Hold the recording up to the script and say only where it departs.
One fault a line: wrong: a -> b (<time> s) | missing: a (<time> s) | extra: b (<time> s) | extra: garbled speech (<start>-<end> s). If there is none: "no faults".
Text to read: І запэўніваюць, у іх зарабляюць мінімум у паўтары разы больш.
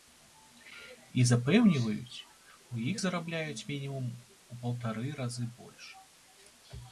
no faults